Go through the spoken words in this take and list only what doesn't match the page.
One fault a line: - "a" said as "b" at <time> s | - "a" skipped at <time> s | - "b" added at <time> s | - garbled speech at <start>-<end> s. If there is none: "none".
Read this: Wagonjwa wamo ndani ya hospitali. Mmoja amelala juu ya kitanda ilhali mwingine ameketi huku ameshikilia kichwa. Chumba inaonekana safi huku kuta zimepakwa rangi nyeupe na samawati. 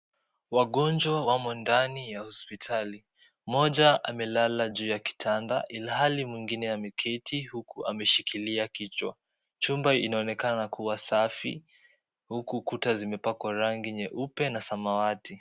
- "kuwa" added at 10.7 s